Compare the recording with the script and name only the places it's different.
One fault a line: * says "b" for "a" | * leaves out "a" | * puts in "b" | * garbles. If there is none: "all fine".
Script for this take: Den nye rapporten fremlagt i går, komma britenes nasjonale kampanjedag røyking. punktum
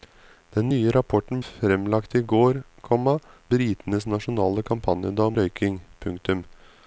all fine